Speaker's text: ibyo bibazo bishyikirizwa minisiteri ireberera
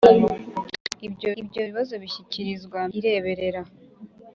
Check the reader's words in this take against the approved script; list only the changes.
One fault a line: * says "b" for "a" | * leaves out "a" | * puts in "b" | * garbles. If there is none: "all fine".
* puts in "ibyo"
* leaves out "minisiteri"